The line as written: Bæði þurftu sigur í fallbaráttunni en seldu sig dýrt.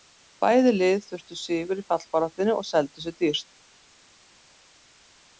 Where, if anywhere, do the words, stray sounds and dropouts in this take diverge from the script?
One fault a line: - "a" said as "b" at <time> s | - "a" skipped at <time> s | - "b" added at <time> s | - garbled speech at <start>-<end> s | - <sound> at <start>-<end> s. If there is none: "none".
- "lið" added at 0.8 s
- "en" said as "og" at 2.6 s